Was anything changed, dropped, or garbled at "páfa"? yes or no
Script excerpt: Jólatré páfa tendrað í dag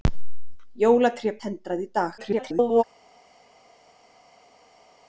yes